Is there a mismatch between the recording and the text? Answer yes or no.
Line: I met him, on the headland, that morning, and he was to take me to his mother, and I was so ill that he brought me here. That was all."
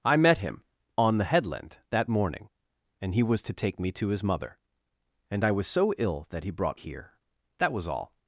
yes